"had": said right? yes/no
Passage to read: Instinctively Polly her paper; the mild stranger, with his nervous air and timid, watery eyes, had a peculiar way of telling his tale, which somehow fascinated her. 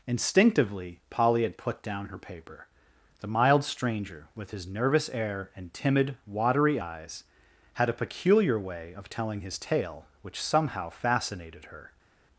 yes